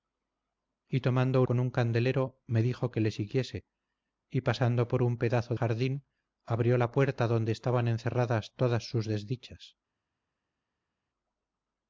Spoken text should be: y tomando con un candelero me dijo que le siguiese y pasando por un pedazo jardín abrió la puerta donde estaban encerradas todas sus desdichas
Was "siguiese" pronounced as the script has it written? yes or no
yes